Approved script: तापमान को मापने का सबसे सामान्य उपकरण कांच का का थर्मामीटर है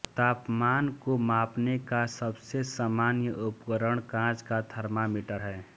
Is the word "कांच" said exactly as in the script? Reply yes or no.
yes